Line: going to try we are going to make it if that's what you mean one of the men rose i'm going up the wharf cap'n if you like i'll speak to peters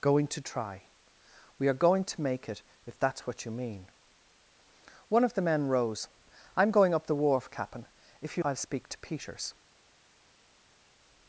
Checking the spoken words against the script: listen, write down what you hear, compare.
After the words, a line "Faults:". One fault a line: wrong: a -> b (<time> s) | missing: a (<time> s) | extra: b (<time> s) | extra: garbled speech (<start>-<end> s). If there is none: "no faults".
going to try we are going to make it if that's what you mean one of the men rose i'm going up the wharf cap'n if you i'll speak to peters
Faults:
missing: like (8.4 s)